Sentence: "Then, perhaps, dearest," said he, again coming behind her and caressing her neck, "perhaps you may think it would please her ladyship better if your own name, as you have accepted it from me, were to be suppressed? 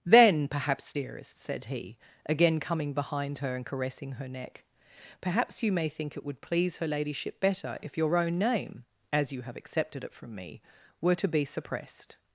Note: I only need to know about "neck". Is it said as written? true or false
true